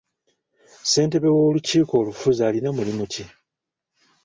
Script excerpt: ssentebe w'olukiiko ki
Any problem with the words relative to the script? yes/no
yes